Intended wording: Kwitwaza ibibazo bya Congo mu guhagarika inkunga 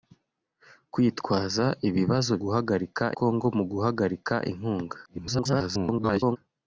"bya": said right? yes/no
no